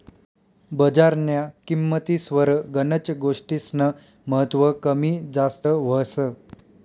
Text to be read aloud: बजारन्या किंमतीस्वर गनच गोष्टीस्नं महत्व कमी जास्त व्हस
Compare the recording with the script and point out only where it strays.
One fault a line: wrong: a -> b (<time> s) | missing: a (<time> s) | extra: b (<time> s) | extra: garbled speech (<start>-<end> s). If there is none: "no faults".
no faults